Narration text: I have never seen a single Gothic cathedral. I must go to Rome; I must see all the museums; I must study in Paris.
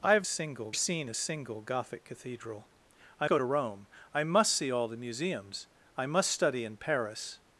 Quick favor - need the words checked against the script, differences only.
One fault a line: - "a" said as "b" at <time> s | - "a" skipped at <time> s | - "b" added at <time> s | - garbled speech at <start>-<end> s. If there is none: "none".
- "never" said as "single" at 0.2 s
- "must" skipped at 3.3 s